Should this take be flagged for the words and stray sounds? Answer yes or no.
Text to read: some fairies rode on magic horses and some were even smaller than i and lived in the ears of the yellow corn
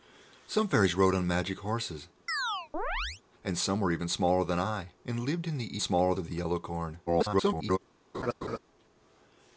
yes